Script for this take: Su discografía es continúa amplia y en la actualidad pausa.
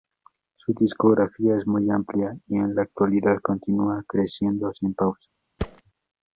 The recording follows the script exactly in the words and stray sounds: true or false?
false